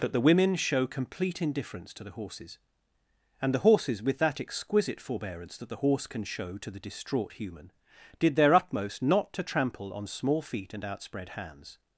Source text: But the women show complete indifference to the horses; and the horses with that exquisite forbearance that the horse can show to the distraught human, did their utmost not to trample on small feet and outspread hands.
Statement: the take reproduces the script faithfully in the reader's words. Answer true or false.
true